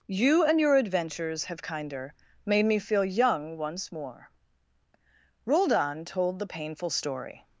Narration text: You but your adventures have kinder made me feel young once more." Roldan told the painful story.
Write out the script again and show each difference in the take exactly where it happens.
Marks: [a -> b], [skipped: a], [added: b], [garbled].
You [but -> and] your adventures have kinder made me feel young once more." Roldan told the painful story.